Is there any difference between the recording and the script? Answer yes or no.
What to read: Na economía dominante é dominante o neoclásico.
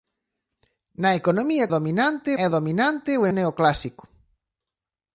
no